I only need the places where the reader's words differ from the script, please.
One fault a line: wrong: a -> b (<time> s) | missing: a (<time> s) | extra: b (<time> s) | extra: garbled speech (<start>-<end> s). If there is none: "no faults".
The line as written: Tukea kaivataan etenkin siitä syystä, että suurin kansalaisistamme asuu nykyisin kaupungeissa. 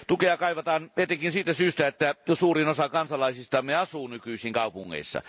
extra: osa (2.7 s)